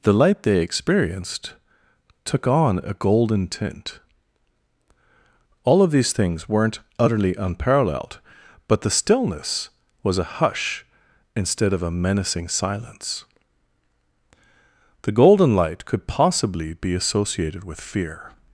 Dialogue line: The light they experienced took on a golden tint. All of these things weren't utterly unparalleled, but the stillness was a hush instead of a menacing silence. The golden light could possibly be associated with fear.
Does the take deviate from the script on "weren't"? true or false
false